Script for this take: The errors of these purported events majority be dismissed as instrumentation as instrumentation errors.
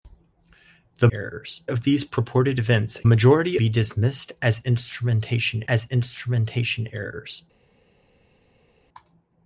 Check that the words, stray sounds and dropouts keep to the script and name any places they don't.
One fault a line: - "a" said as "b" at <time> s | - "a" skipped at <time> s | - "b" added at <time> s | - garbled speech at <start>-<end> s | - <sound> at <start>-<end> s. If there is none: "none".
none